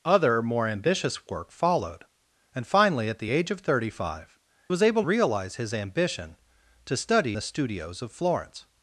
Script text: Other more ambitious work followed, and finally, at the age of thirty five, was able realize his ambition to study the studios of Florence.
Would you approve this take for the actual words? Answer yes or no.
yes